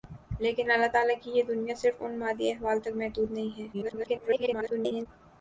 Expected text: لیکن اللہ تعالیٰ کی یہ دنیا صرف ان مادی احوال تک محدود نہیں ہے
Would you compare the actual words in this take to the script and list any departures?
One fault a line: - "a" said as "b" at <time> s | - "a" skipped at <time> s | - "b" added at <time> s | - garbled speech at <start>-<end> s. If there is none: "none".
- garbled speech at 3.7-5.1 s